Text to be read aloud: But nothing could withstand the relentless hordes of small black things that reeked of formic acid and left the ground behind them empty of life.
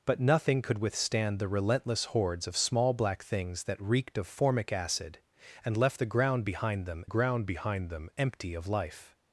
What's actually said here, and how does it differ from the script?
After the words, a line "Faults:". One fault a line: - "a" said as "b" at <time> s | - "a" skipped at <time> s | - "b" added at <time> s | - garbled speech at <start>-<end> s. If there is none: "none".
But nothing could withstand the relentless hordes of small black things that reeked of formic acid and left the ground behind them ground behind them empty of life.
Faults:
- "ground behind them" added at 7.0 s